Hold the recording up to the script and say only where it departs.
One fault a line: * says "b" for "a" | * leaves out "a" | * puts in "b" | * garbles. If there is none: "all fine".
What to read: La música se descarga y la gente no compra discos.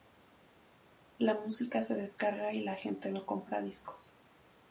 all fine